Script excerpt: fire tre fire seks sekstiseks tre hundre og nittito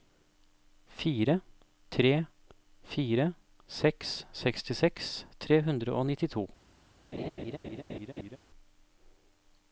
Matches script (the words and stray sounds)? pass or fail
fail